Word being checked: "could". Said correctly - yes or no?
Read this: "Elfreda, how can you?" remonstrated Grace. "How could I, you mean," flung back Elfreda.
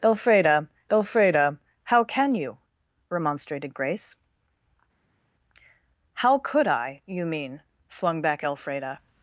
yes